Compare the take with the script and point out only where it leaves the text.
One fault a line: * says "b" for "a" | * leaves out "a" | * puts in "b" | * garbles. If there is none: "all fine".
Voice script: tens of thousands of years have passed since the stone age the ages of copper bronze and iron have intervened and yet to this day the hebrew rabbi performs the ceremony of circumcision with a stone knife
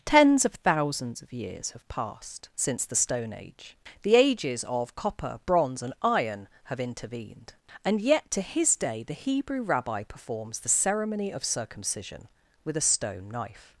* says "his" for "this"